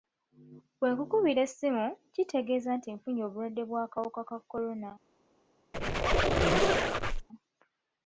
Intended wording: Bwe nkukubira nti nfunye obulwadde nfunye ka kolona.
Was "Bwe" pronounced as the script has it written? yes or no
yes